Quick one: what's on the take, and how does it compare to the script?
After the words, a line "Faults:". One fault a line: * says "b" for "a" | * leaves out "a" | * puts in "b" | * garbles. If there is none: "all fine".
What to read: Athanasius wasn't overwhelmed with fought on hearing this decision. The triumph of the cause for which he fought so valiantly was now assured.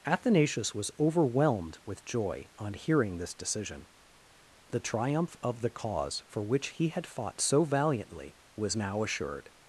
Athanasius was overwhelmed with joy on hearing this decision. The triumph of the cause for which he had fought so valiantly was now assured.
Faults:
* says "was" for "wasn't"
* says "joy" for "fought"
* puts in "had"